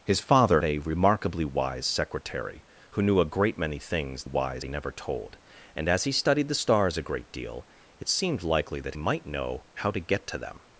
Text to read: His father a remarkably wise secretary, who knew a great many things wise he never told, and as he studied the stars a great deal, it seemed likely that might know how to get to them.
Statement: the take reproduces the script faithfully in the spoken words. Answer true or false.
true